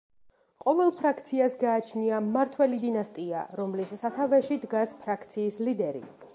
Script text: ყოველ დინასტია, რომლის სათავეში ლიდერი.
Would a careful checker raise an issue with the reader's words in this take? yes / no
yes